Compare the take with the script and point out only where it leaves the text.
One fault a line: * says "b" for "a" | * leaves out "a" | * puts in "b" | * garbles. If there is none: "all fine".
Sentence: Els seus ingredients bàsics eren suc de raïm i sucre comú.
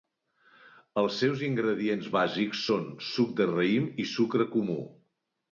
* says "són" for "eren"